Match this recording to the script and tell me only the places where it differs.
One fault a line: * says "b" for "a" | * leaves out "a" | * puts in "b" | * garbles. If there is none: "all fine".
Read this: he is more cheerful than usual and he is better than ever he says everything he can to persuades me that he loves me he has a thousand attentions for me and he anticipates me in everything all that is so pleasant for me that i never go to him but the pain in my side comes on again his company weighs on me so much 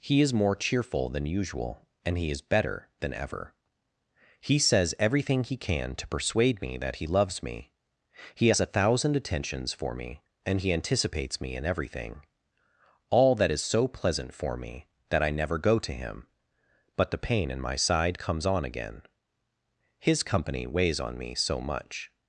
* says "persuade" for "persuades"